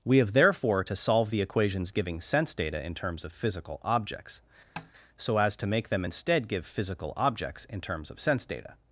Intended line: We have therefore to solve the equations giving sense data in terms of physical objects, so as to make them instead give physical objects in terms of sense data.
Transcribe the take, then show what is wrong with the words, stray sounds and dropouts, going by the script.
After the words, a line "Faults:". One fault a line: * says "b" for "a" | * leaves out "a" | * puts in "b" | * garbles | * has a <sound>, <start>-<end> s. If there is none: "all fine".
We have therefore to solve the equations giving sense data in terms of physical objects, so as to make them instead give physical objects in terms of sense data.
Faults:
* has a tap, 4.8-4.9 s